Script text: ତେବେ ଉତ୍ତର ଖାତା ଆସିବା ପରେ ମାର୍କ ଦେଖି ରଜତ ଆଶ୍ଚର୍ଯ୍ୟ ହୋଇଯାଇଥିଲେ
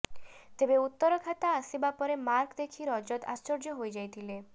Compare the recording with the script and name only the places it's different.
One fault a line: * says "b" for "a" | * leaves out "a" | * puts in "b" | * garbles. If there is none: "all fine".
all fine